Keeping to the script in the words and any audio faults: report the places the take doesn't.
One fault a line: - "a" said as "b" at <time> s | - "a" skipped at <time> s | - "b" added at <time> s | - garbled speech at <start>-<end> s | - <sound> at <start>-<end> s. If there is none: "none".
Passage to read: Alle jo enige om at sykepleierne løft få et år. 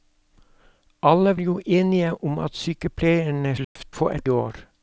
- dropout at 3.6-3.8 s